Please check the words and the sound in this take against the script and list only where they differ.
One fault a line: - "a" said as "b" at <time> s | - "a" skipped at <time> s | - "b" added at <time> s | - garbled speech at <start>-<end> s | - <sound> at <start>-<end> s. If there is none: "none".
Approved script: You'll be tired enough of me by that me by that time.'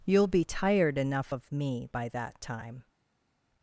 - "me by that" skipped at 2.4 s